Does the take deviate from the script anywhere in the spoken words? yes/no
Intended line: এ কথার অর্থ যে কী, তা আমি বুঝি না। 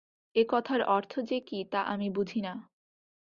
no